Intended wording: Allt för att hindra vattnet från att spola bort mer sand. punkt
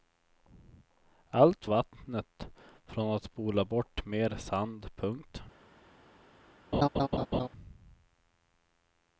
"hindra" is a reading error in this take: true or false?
true